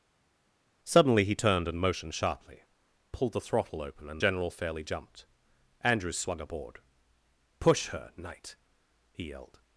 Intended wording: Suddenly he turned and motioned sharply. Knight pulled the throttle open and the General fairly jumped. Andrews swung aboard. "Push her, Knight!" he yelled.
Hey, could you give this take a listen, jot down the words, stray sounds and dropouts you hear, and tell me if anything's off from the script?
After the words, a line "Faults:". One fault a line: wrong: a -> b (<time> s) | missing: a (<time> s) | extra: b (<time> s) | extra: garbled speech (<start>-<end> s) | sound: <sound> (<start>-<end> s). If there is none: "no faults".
Suddenly he turned and motioned sharply. Pulled the throttle open and General fairly jumped. Andrews swung aboard. "Push her, Knight!" he yelled.
Faults:
missing: Knight (2.6 s)
missing: the (4.2 s)